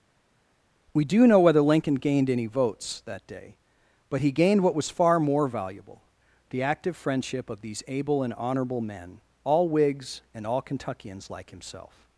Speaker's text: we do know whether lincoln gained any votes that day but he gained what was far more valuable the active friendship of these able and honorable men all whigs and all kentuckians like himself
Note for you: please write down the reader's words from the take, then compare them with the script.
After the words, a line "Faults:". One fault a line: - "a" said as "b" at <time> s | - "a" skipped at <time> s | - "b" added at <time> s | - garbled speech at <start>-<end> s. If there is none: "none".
we do know whether lincoln gained any votes that day but he gained what was far more valuable the active friendship of these able and honorable men all whigs and all kentuckians like himself
Faults:
none